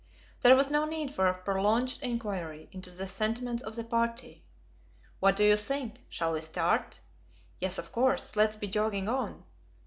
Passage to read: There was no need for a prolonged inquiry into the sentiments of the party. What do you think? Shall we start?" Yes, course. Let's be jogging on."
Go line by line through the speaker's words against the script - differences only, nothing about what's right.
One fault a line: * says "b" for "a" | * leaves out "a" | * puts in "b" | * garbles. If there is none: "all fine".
* puts in "of"